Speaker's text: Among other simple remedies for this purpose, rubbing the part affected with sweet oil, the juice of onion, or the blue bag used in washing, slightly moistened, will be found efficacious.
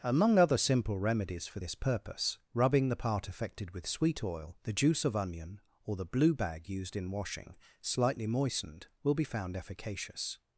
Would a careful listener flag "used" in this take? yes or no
no